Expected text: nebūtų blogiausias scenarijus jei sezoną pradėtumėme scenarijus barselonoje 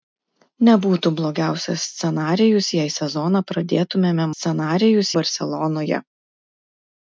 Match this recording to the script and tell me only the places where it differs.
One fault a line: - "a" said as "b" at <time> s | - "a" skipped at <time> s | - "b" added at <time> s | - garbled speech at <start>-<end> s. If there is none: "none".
none